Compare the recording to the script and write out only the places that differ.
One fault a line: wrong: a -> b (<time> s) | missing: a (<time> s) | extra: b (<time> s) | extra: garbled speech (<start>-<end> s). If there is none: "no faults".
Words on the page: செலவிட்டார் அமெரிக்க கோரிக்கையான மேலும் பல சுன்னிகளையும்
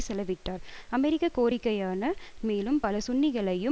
no faults